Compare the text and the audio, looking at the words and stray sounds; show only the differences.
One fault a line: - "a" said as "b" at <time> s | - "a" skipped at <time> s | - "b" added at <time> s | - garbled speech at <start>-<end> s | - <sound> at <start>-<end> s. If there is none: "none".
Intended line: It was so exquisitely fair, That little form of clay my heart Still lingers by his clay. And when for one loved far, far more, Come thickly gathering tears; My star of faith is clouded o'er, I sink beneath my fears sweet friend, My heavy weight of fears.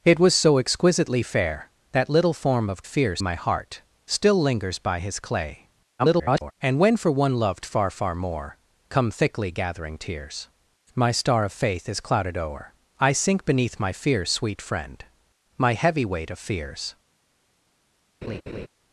- "clay" said as "fears" at 2.8 s
- garbled speech at 6.0-6.5 s
- laugh at 18.2-18.7 s